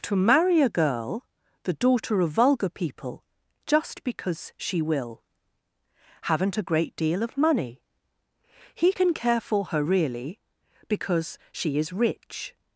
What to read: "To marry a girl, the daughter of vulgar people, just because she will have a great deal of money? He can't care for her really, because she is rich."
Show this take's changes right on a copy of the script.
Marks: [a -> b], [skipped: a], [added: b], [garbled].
"To marry a girl, the daughter of vulgar people, just because she will [have -> haven't] a great deal of money? He [can't -> can] care for her really, because she is rich."